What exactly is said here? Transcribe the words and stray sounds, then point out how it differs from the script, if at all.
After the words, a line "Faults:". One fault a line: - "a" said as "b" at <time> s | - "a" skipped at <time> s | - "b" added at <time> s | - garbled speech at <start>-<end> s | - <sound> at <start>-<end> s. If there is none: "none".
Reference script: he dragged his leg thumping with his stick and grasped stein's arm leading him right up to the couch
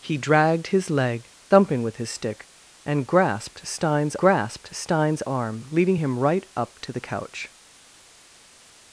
he dragged his leg thumping with his stick and grasped stein's grasped stein's arm leading him right up to the couch
Faults:
- "grasped stein's" added at 4.2 s